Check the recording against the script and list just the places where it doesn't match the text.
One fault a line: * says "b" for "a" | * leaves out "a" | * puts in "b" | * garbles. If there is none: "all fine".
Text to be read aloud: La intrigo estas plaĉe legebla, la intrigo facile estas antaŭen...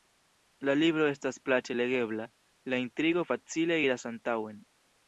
* says "libro" for "intrigo"
* says "iras" for "estas"